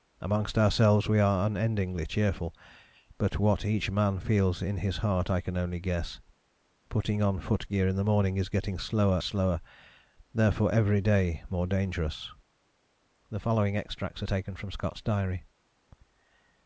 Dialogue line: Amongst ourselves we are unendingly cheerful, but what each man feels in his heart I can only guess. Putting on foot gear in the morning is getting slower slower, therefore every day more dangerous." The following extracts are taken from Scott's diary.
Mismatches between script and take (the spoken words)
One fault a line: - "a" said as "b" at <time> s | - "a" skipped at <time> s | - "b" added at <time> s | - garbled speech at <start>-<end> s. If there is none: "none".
none